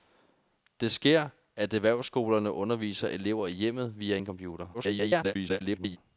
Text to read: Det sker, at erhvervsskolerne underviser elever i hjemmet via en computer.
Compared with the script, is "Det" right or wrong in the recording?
right